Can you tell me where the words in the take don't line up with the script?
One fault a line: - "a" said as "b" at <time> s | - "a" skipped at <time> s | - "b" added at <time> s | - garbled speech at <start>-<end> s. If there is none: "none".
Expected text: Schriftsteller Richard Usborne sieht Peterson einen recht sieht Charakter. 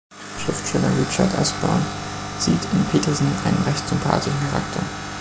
- "in" added at 2.7 s
- "sieht" said as "sympathischen" at 3.9 s